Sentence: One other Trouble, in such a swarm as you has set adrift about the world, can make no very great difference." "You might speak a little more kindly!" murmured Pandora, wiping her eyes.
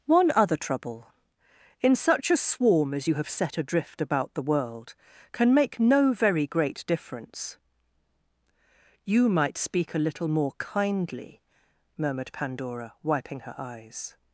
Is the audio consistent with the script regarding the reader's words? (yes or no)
no